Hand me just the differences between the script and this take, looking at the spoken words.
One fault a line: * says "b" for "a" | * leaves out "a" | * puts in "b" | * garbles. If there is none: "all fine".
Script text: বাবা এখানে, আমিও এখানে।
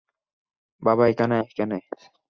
* leaves out "আমিও"